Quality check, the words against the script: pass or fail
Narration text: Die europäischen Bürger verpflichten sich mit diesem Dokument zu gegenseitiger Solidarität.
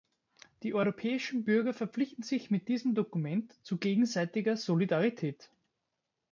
pass